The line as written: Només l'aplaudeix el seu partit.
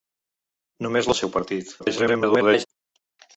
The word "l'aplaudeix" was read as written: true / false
false